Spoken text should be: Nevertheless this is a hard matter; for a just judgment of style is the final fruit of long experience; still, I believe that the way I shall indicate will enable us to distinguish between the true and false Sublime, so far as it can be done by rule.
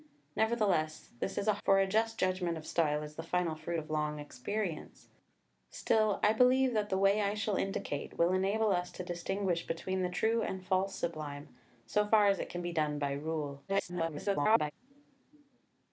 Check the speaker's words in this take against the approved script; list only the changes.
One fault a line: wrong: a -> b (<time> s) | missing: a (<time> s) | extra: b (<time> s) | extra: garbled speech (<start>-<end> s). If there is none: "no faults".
missing: hard matter (1.5 s)
extra: garbled speech (13.7-14.7 s)